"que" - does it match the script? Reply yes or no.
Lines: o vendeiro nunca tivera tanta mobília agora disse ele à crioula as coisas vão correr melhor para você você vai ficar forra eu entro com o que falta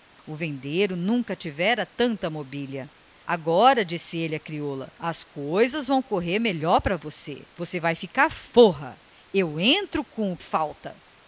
no